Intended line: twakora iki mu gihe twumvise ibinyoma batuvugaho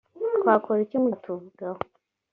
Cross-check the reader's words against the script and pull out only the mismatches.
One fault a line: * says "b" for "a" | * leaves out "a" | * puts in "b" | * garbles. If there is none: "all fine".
* leaves out "gihe twumvise ibinyoma"